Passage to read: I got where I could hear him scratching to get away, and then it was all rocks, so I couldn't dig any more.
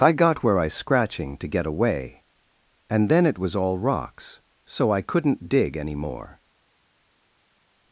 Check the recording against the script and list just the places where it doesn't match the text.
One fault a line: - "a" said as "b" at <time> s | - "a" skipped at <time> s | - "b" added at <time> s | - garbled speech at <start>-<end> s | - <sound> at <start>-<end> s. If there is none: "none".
- "could hear him" skipped at 0.7 s